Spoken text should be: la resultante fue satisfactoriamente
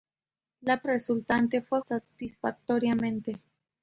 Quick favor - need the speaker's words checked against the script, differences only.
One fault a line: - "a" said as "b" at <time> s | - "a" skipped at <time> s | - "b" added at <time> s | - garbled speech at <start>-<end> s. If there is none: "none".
none